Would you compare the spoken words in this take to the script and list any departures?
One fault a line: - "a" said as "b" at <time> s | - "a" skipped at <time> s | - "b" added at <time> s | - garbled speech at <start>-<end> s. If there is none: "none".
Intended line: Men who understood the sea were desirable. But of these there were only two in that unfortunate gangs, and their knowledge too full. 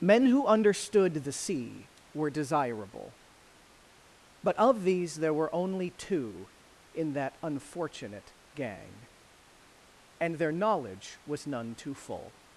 - "gangs" said as "gang" at 8.5 s
- "was none" added at 11.3 s